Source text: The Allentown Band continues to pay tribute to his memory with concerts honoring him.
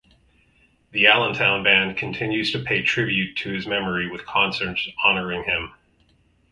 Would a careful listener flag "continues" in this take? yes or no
no